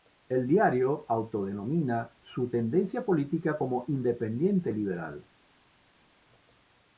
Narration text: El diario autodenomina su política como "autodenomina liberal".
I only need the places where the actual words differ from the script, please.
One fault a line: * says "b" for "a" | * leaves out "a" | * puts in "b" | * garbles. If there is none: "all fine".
* puts in "tendencia"
* says "independiente" for "autodenomina"